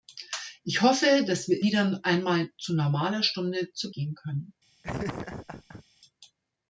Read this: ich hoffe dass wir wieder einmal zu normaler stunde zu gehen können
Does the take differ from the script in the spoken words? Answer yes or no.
no